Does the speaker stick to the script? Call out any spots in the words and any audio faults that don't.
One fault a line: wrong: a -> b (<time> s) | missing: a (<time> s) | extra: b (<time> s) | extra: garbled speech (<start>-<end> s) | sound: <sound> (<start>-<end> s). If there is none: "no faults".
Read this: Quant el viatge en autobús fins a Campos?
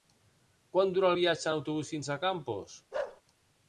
extra: dura (0.9 s)
sound: bark (2.9-3.2 s)